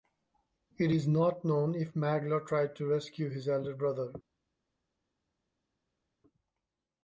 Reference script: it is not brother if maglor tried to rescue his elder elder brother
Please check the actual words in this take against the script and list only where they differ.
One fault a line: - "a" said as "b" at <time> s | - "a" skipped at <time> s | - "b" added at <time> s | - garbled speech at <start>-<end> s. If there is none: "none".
- "brother" said as "known" at 1.4 s
- "elder" skipped at 3.7 s